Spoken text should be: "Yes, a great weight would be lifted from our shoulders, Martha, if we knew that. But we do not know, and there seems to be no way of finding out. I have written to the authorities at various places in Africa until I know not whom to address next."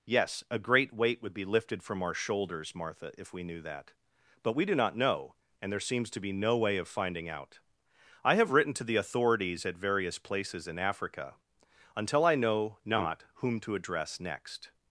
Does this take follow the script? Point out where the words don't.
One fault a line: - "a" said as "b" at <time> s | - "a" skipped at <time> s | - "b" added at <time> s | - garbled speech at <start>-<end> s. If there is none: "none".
none